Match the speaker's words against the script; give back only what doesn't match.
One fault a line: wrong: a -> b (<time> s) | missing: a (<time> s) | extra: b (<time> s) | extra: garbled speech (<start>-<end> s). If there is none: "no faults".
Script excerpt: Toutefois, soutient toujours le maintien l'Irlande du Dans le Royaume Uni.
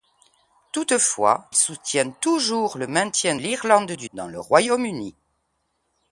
no faults